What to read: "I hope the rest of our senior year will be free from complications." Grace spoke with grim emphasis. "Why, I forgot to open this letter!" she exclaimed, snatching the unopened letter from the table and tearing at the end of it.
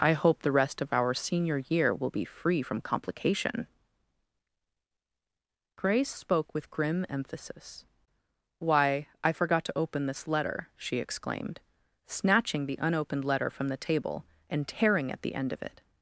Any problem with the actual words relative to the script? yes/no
yes